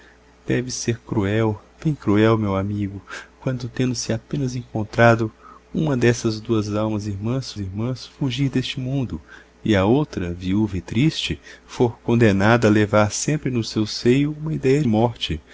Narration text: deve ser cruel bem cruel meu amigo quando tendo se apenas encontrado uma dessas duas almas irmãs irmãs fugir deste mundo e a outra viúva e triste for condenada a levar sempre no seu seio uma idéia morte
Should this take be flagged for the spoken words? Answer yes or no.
no